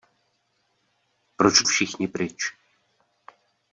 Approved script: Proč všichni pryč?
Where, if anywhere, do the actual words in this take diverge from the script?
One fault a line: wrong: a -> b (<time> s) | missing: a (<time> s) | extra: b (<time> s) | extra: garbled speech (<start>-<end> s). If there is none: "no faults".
no faults